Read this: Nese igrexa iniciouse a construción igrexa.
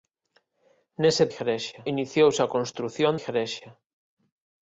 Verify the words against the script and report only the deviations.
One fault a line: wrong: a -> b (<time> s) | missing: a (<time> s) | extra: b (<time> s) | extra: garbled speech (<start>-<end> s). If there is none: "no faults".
no faults